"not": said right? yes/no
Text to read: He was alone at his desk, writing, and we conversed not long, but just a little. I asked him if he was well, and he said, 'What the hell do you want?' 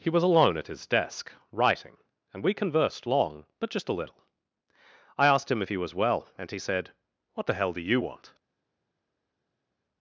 no